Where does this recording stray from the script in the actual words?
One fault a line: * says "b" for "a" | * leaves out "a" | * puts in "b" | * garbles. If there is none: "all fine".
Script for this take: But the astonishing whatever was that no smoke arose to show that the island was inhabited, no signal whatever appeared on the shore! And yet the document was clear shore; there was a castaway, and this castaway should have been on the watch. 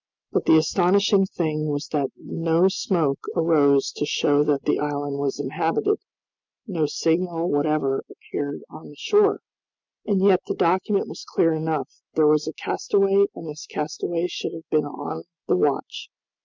* says "thing" for "whatever"
* says "enough" for "shore"